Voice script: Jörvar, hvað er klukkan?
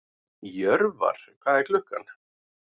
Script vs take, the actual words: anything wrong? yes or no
no